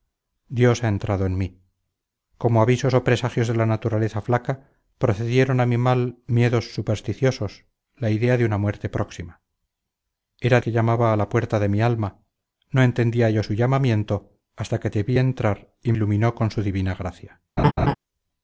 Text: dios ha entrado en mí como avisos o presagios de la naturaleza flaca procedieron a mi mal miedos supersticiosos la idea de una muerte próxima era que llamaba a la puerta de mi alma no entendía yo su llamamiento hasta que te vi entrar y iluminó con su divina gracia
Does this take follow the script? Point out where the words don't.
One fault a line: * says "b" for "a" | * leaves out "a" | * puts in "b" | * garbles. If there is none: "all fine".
all fine